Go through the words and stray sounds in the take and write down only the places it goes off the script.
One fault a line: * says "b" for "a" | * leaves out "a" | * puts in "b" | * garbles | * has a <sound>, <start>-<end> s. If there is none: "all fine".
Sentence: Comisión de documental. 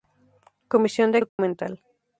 * has a dropout, 1.3-1.4 s